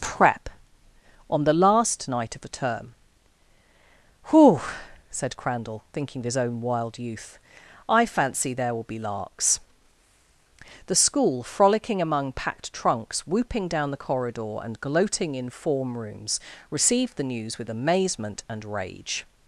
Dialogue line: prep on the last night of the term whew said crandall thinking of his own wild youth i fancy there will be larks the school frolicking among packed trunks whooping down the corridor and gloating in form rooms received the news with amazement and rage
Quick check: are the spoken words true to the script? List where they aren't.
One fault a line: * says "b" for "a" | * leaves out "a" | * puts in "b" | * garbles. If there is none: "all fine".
all fine